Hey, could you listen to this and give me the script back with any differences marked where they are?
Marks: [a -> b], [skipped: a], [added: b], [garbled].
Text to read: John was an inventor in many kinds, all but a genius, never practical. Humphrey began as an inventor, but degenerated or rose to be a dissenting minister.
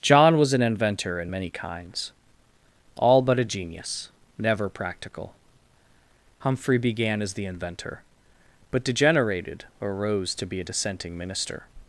John was an inventor in many kinds, all but a genius, never practical. Humphrey began as [an -> the] inventor, but degenerated or rose to be a dissenting minister.